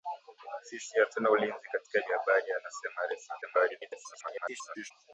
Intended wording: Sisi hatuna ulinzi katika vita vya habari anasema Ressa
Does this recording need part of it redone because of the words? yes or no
yes